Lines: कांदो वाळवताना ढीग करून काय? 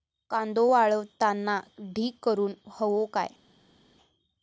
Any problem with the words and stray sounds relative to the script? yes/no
yes